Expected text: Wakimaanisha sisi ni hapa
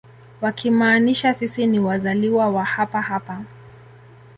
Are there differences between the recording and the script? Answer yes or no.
yes